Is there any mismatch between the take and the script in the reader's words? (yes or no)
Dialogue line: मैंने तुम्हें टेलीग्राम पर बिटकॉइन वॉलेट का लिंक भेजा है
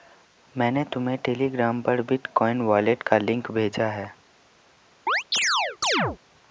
no